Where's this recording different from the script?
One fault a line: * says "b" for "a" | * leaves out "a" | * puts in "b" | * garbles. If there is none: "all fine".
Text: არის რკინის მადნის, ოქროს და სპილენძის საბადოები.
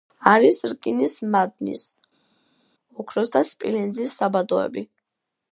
all fine